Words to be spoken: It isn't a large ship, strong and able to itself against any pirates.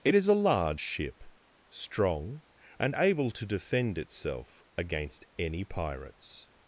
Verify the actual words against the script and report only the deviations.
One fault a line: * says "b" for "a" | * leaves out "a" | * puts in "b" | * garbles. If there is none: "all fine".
* says "is" for "isn't"
* puts in "defend"